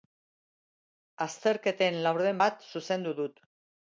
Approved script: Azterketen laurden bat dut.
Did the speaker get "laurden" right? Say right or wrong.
right